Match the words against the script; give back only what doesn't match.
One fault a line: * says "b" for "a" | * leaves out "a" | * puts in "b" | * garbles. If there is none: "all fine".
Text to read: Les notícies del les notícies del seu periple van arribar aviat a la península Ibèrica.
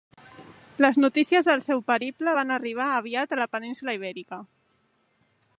* leaves out "les notícies del"